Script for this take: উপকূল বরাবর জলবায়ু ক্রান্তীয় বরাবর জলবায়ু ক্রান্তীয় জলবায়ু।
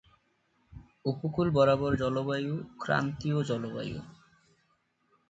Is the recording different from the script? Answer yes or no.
yes